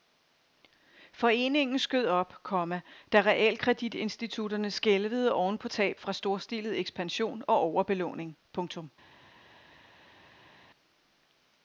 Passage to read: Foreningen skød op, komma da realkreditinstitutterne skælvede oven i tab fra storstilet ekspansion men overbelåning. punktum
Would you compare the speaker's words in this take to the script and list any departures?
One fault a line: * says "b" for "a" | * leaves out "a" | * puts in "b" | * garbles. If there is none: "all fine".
* says "på" for "i"
* says "og" for "men"